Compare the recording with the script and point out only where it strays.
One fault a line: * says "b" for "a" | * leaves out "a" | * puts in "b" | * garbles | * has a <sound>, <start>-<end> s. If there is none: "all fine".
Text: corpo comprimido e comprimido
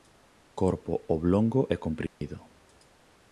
* says "oblongo" for "comprimido"
* has a dropout, 2.1-2.2 s